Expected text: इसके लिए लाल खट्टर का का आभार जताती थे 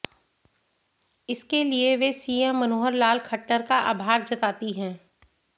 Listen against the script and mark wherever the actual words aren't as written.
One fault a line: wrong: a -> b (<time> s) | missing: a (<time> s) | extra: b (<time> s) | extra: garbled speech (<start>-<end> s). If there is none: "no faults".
extra: वे सीएम मनोहर (2.0 s)
missing: का (3.8 s)
wrong: थे -> हैं (4.7 s)